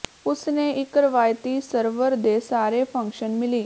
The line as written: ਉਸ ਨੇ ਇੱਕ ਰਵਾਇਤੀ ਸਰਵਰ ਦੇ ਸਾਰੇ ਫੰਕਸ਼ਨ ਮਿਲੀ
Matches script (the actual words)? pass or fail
pass